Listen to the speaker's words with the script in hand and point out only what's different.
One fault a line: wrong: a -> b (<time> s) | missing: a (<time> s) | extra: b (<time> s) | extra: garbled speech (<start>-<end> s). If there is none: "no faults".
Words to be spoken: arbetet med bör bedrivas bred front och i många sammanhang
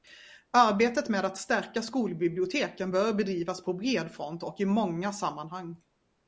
extra: att stärka skolbiblioteken (1.2 s)
extra: på (3.6 s)